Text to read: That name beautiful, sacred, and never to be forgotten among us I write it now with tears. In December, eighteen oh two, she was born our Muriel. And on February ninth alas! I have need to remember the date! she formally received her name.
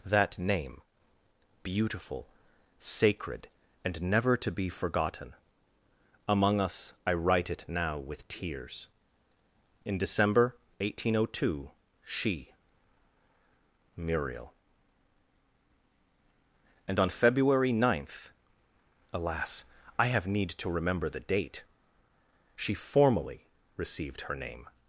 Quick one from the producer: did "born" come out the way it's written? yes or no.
no